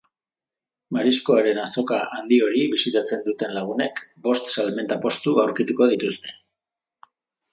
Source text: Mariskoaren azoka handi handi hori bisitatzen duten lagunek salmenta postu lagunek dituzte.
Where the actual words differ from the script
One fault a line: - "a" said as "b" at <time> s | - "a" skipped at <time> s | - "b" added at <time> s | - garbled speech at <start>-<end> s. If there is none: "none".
- "handi" skipped at 2.4 s
- "bost" added at 4.3 s
- "lagunek" said as "aurkituko" at 5.5 s